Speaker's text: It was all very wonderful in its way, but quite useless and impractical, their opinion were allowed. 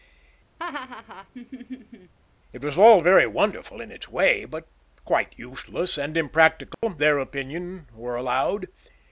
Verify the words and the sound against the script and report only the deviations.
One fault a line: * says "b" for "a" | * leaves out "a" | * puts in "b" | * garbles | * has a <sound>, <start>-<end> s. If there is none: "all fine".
* has a laugh, 0.6-2.1 s
* has a dropout, 6.7-6.8 s